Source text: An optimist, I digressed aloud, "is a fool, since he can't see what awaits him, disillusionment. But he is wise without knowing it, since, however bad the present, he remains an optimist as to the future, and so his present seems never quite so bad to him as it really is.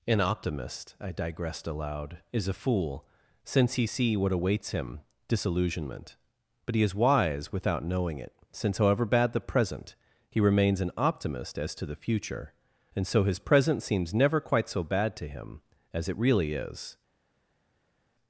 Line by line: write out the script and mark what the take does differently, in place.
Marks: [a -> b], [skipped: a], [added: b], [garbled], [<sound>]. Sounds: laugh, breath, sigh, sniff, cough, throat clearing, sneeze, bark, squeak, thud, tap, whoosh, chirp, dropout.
An optimist, I digressed aloud, "is a fool, since he [skipped: can't] see what awaits him, disillusionment. But he is wise without knowing it, since, however bad the present, he remains an optimist as to the future, and so his present seems never quite so bad to him as it really is.